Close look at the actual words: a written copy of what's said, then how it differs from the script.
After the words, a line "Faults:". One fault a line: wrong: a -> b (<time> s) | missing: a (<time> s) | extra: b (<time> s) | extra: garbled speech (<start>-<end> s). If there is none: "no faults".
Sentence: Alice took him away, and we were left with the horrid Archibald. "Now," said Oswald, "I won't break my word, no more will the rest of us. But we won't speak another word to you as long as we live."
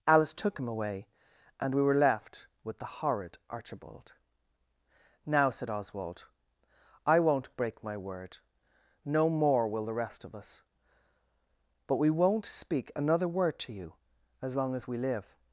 Alice took him away, and we were left with the horrid Archibald. "Now," said Oswald, "I won't break my word, no more will the rest of us. But we won't speak another word to you as long as we live."
Faults:
no faults